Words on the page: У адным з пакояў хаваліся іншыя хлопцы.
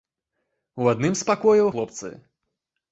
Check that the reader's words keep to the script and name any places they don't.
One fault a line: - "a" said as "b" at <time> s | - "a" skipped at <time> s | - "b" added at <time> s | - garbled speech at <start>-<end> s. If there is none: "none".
- "хаваліся іншыя" skipped at 1.7 s